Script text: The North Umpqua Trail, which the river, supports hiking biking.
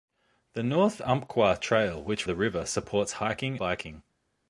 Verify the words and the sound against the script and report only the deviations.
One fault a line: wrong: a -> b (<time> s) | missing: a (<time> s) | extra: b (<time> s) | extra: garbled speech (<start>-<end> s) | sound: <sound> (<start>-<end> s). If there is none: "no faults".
no faults